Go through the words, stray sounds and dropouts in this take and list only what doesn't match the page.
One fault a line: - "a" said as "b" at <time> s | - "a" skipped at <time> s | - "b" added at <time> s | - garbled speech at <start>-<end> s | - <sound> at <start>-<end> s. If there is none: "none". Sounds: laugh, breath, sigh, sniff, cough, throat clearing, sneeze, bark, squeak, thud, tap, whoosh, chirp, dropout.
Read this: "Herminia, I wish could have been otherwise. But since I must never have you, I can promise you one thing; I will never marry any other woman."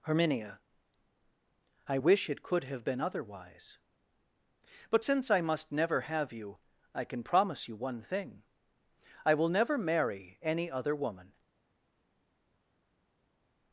- "it" added at 2.3 s